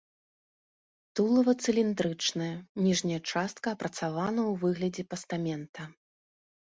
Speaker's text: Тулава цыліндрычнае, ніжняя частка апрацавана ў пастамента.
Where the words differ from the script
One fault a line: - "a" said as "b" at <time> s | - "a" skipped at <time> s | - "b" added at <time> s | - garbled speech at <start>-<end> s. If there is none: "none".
- "выглядзе" added at 4.7 s